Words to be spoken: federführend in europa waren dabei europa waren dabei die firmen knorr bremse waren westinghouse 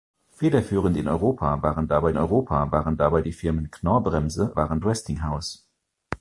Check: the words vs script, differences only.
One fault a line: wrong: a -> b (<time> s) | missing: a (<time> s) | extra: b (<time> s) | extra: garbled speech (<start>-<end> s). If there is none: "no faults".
no faults